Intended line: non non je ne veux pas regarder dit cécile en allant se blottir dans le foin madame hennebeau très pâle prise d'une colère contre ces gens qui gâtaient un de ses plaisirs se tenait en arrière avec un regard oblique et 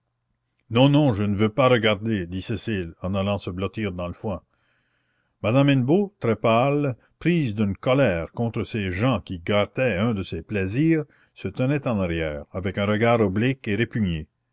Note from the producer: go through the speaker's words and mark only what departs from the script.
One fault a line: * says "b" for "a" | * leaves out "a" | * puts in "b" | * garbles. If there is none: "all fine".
all fine